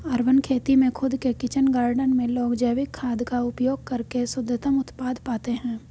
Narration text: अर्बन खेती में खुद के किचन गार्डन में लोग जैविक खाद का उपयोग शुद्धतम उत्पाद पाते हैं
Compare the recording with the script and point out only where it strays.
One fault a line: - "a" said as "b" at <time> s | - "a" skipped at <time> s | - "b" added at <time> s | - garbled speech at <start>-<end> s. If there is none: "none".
- "करके" added at 3.9 s